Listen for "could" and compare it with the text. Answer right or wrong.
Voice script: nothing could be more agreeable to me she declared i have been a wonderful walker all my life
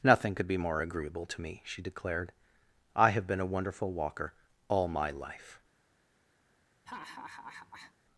right